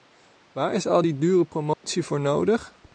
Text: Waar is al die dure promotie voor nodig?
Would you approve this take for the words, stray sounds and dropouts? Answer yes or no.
no